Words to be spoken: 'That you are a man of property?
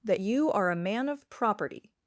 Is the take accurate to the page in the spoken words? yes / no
yes